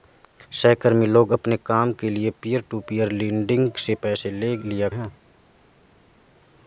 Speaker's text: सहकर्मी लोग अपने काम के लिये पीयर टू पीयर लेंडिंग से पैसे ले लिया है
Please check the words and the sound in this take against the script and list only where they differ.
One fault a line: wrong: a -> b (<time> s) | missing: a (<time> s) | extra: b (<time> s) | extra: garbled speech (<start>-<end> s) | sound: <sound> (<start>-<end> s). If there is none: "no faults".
no faults